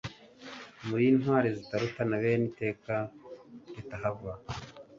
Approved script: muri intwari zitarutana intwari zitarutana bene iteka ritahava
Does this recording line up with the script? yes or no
no